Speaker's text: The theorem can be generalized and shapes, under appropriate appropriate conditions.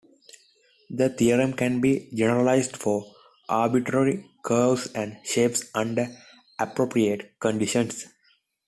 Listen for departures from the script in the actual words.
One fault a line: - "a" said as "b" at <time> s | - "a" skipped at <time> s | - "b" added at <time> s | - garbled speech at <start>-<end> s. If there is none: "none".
- "for arbitrary curves" added at 2.7 s
- "appropriate" skipped at 7.4 s